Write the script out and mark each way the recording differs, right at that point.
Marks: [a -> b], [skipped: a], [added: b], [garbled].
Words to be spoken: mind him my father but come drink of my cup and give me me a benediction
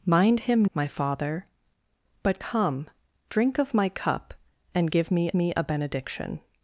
mind him my father but come drink of my cup and give me me a benediction